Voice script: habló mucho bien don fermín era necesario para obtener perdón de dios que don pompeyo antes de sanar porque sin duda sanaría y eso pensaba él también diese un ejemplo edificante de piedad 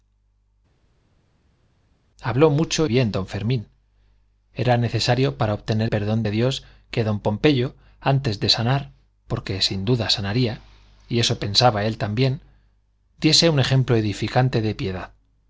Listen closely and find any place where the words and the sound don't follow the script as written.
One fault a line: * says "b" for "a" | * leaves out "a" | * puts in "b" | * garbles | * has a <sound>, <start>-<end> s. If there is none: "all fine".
all fine